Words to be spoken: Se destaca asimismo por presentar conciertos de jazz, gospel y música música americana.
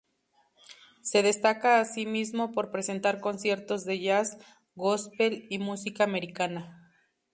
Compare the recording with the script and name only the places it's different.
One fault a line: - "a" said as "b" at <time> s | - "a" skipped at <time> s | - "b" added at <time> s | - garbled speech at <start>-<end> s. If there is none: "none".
- "música" skipped at 6.0 s